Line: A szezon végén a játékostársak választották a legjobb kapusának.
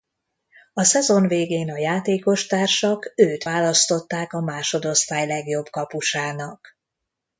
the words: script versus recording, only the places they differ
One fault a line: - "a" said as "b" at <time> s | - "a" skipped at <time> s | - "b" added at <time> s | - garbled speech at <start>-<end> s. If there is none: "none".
- "őt" added at 3.1 s
- "másodosztály" added at 4.4 s